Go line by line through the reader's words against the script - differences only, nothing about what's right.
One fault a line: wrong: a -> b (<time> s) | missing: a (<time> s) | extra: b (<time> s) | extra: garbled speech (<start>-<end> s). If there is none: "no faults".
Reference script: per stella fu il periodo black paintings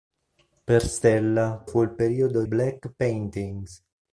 no faults